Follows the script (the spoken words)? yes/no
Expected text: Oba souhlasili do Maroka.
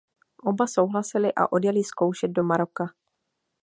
no